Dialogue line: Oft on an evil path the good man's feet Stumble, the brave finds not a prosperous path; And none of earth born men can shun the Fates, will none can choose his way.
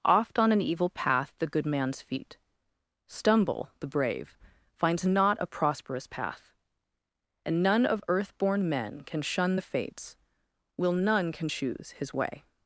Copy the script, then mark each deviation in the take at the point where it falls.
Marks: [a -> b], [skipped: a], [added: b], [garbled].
Oft on an evil path the good man's feet Stumble, the brave finds not a prosperous path; And none of earth born men can shun the Fates, will none can choose his way.